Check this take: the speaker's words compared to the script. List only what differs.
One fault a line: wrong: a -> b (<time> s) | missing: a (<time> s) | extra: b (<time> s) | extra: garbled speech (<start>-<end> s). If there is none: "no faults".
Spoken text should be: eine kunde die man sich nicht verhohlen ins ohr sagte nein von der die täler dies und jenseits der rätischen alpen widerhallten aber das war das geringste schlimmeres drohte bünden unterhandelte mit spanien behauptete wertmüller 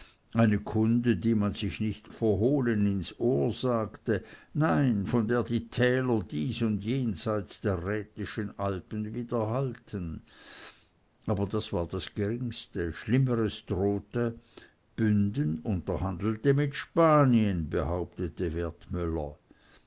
no faults